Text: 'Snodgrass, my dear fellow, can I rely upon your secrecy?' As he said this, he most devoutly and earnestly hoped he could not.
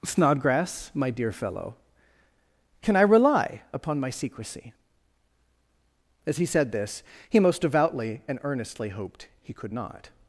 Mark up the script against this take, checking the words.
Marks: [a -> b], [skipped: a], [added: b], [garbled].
'Snodgrass, my dear fellow, can I rely upon [your -> my] secrecy?' As he said this, he most devoutly and earnestly hoped he could not.